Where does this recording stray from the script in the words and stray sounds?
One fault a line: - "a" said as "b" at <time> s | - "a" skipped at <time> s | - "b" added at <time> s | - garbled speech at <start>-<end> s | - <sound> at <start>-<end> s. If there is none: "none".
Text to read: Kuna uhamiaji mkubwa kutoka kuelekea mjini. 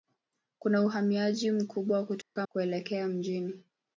- dropout at 2.2-2.4 s